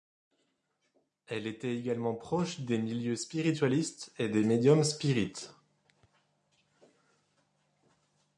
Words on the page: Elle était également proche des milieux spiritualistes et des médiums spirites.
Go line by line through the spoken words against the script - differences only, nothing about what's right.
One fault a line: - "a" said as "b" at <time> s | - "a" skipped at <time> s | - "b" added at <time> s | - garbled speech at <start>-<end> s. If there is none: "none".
none